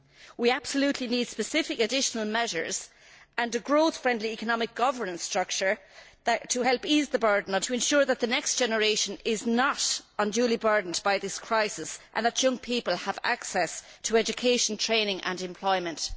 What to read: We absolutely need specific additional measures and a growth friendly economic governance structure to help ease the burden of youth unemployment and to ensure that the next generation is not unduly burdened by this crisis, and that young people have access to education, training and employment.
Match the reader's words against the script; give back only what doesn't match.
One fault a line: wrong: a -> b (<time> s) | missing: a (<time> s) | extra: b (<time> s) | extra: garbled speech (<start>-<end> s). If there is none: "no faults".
missing: youth unemployment and (7.6 s)